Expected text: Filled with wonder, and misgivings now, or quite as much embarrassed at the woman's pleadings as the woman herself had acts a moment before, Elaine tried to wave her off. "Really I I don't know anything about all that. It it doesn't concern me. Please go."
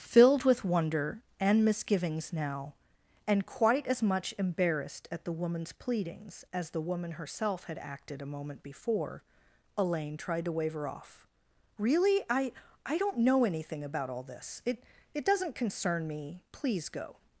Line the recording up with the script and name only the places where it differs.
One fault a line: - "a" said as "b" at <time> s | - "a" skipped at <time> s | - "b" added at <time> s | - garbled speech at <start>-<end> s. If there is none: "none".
- "or" said as "and" at 3.3 s
- "acts" said as "acted" at 7.8 s
- "that" said as "this" at 14.2 s